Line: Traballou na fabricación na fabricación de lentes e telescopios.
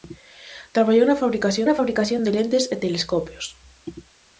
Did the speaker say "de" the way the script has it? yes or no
yes